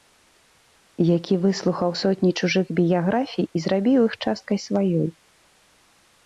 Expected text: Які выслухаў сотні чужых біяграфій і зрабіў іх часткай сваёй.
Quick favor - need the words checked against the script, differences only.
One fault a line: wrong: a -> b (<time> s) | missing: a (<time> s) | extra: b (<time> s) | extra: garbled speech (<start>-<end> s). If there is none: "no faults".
no faults